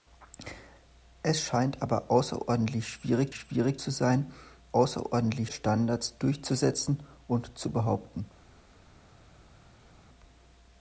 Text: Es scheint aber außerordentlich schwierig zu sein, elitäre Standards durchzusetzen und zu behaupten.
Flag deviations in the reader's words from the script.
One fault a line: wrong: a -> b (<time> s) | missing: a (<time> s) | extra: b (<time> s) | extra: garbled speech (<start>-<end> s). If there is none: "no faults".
extra: schwierig (3.3 s)
wrong: elitäre -> außerordentlich (4.7 s)